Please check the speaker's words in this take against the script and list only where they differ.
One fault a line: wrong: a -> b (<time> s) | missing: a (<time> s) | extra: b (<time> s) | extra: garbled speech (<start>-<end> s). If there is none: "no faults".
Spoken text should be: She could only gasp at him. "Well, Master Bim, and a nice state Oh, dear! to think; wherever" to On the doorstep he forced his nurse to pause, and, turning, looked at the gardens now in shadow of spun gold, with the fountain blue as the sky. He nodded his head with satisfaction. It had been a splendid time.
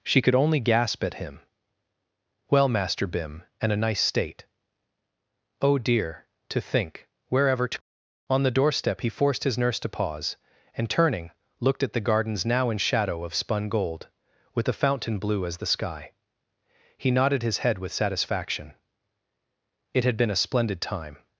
no faults